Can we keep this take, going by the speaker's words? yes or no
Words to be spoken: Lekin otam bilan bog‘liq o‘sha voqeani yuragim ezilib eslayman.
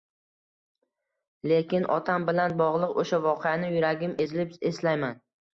yes